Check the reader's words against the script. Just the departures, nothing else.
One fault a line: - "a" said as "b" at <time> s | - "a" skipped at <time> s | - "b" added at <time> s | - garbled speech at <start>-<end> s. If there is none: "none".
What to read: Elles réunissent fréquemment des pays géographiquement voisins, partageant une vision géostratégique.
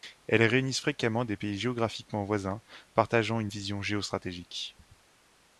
none